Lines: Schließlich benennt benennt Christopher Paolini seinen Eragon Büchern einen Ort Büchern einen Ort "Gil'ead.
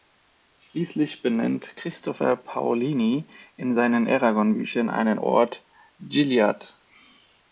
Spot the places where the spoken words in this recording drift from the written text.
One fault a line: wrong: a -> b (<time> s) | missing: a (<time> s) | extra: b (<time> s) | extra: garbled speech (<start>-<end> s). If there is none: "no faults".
missing: benennt (1.8 s)
extra: in (3.5 s)
missing: Büchern einen Ort (5.6 s)